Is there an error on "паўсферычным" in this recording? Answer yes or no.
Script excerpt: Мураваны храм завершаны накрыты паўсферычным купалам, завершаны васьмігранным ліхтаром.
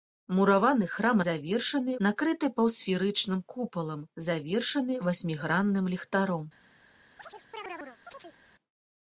no